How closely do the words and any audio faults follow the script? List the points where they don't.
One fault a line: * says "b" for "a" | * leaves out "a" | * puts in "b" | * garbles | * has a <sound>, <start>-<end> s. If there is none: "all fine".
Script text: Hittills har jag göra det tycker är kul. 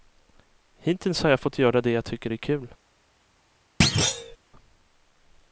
* puts in "fått"
* puts in "jag"
* has a thud, 3.8-4.4 s